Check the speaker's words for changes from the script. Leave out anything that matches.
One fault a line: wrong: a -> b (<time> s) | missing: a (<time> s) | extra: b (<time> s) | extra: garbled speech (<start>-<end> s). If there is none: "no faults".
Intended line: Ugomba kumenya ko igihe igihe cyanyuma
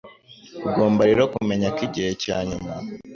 extra: rero (1.1 s)
missing: igihe (2.1 s)